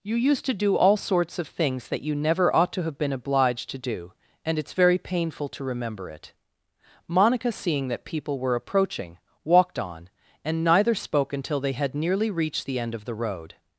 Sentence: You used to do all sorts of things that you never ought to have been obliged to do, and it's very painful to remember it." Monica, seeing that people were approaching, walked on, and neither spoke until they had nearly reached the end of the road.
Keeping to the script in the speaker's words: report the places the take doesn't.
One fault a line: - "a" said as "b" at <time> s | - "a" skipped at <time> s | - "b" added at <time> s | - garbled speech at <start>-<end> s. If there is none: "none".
none